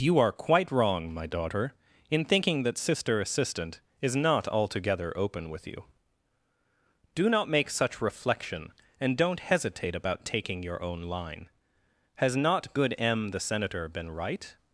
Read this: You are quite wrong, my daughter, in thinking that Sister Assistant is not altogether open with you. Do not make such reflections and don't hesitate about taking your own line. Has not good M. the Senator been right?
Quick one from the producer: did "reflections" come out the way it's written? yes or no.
no